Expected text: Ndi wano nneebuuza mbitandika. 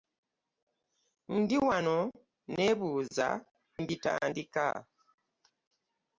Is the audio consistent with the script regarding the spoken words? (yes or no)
yes